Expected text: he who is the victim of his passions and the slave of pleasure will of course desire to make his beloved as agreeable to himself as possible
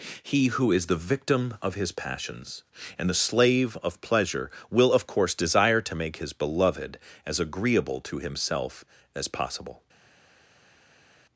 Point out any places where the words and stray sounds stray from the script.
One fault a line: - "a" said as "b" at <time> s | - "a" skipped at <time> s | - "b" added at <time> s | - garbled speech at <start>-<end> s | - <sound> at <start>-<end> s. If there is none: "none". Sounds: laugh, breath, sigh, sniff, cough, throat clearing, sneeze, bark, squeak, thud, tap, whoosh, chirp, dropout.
none